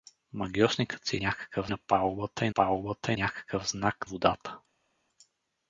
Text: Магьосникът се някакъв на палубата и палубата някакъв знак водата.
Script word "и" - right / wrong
right